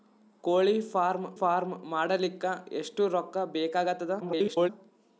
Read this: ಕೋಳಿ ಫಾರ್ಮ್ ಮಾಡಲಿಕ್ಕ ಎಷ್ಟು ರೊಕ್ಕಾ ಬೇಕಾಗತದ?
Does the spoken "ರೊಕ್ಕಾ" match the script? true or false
true